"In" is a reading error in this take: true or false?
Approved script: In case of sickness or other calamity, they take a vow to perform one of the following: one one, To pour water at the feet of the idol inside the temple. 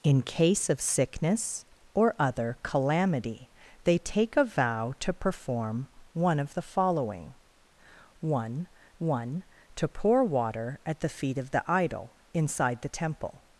false